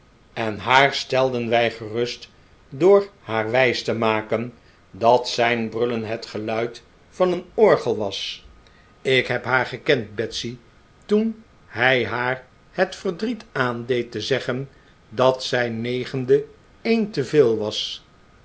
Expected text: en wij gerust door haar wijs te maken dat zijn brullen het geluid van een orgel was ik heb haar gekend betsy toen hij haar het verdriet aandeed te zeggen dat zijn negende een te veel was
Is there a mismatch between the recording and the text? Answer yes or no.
yes